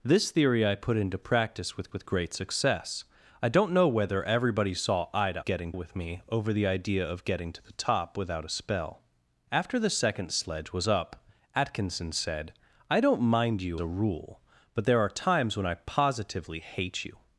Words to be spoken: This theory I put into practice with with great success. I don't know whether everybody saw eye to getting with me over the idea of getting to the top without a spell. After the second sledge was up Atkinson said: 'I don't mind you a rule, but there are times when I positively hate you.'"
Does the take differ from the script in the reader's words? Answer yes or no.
no